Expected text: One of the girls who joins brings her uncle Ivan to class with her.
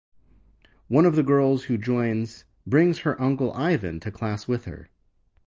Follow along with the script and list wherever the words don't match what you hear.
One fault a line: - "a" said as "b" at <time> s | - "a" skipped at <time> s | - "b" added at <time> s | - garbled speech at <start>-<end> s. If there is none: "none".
none